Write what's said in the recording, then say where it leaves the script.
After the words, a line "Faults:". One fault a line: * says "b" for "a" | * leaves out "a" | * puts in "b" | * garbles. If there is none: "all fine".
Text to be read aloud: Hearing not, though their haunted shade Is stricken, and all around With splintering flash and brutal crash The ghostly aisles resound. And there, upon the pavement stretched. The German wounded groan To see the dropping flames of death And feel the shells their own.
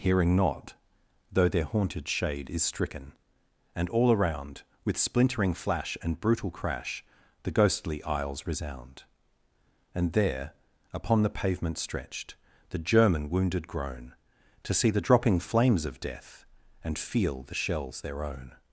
Hearing not, though their haunted shade Is stricken, and all around With splintering flash and brutal crash The ghostly aisles resound. And there, upon the pavement stretched. The German wounded groan To see the dropping flames of death And feel the shells their own.
Faults:
all fine